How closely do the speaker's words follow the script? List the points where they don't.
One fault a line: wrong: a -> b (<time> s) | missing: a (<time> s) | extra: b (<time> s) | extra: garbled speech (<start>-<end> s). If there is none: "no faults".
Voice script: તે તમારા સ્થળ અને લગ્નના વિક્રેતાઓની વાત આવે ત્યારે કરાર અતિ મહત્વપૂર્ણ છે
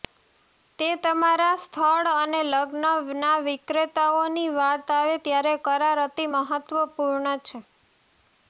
no faults